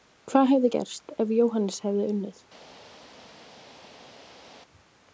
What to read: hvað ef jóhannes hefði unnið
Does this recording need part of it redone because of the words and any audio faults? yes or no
yes